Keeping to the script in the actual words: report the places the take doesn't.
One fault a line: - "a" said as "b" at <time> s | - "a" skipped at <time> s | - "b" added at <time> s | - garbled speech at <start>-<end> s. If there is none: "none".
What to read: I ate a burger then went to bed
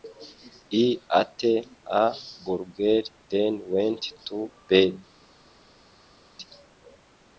none